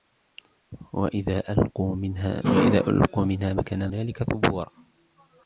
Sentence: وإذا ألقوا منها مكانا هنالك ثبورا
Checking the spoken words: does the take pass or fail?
pass